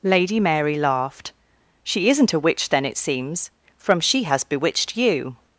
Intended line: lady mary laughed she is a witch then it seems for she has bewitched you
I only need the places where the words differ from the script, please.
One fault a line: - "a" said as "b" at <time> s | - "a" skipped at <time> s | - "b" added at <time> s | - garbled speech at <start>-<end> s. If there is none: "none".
- "is" said as "isn't" at 2.1 s
- "for" said as "from" at 3.8 s